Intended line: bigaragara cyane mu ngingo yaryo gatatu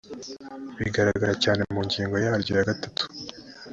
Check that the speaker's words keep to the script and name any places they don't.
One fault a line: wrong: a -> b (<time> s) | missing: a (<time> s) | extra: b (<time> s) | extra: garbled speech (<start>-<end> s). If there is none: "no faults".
extra: ya (2.6 s)